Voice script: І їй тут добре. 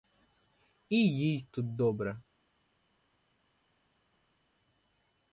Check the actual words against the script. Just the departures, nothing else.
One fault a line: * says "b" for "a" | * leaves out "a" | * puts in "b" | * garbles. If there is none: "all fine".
all fine